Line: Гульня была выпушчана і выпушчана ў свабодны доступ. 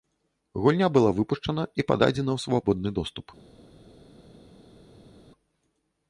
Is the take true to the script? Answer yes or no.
no